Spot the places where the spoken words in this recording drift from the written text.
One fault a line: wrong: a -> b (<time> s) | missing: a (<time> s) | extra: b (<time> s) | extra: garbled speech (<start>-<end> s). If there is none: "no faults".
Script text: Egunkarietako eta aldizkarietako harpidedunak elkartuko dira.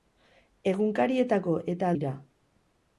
missing: aldizkarietako harpidedunak elkartuko (1.9 s)